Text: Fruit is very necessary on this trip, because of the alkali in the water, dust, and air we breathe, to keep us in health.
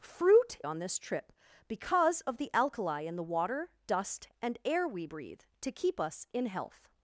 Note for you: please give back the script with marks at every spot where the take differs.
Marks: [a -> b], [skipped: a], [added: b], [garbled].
Fruit [skipped: is very necessary] on this trip, because of the alkali in the water, dust, and air we breathe, to keep us in health.